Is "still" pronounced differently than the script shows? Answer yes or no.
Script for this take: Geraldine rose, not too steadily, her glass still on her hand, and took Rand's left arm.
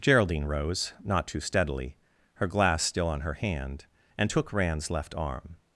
no